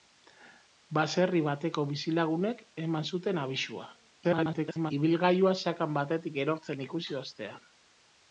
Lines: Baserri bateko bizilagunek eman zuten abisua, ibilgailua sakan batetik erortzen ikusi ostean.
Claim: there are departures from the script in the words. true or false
true